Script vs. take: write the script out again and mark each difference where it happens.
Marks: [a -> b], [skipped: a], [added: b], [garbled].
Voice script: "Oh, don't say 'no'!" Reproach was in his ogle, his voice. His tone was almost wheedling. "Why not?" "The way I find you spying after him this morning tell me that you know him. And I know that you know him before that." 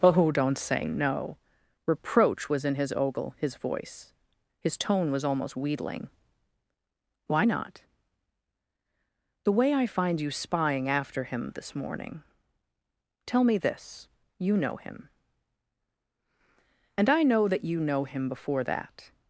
"Oh, don't say 'no'!" Reproach was in his ogle, his voice. His tone was almost wheedling. "Why not?" "The way I find you spying after him this morning tell me [that -> this] you know him. And I know that you know him before that."